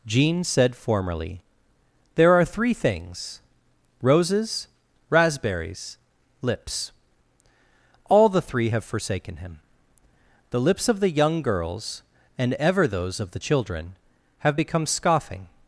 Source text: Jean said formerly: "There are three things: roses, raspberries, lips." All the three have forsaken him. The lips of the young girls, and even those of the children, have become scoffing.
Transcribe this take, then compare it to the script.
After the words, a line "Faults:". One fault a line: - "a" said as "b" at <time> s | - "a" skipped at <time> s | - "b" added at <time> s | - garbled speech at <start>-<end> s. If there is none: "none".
Jean said formerly: "There are three things: roses, raspberries, lips." All the three have forsaken him. The lips of the young girls, and ever those of the children, have become scoffing.
Faults:
- "even" said as "ever" at 12.5 s